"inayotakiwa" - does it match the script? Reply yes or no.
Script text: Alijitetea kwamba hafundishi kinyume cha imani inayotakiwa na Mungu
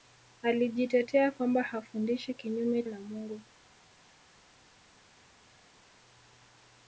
no